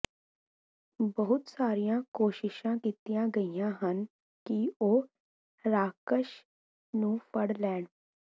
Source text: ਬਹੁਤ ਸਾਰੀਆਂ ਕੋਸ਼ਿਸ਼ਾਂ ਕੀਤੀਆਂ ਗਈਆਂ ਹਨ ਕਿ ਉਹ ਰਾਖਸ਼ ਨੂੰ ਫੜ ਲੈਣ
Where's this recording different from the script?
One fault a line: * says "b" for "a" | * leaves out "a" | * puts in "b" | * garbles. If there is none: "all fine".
all fine